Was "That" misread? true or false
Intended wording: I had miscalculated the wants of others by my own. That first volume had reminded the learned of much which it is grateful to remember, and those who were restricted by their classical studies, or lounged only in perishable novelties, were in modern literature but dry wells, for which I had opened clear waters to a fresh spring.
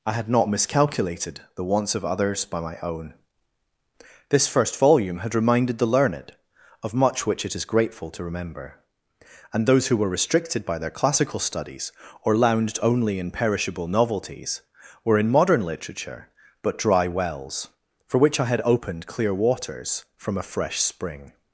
true